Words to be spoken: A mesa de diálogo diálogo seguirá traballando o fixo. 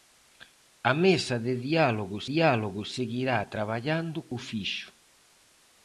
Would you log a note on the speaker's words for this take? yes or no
no